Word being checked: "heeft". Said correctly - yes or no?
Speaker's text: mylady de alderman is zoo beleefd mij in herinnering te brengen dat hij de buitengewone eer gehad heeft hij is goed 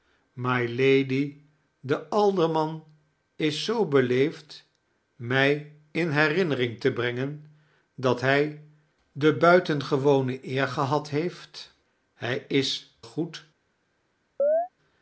yes